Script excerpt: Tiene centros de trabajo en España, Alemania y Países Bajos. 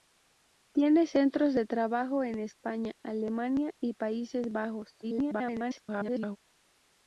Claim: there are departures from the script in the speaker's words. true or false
true